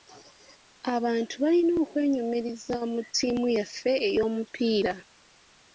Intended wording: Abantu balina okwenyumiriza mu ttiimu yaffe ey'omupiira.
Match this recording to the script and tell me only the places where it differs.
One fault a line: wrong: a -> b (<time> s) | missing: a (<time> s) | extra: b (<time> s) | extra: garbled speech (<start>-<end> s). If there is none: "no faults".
no faults